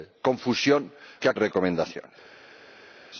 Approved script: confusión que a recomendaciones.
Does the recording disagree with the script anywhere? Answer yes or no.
no